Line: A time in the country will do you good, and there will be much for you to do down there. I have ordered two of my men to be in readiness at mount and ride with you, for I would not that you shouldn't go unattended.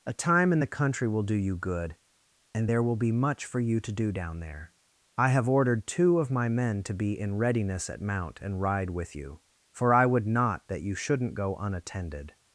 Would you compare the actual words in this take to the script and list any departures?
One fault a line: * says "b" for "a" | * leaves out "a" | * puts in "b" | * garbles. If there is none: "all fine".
all fine